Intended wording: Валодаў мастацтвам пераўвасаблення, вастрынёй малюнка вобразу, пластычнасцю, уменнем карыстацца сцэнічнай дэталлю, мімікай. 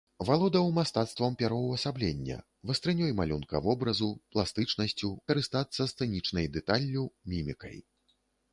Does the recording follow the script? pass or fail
fail